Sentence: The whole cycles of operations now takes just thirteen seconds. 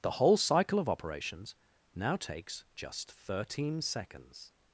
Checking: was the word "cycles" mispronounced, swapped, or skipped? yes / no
yes